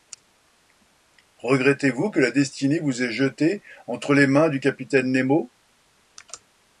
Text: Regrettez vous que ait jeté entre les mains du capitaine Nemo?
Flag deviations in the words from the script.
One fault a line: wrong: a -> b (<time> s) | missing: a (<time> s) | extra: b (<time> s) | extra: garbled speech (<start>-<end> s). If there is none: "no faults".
extra: la destinée vous (2.2 s)